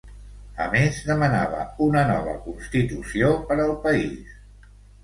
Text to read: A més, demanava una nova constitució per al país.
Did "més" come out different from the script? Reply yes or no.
no